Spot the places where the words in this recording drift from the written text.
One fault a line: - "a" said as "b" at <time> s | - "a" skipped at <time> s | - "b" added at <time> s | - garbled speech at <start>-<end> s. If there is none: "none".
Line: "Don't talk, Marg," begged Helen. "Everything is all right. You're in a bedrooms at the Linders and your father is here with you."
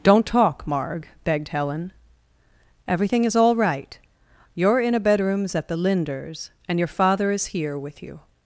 none